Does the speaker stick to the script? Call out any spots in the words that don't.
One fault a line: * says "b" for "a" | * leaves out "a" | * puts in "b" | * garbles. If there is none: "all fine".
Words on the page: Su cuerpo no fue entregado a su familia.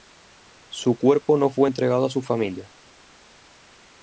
all fine